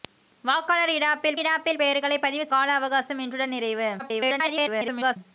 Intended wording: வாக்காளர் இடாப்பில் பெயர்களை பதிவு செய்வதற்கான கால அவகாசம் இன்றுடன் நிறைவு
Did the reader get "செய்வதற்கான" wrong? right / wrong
wrong